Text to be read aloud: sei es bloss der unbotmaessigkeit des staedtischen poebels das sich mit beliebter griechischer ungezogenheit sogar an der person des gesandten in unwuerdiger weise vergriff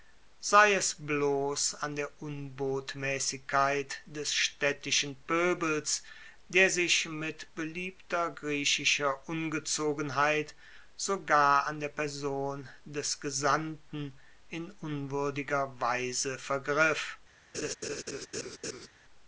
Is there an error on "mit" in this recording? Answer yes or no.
no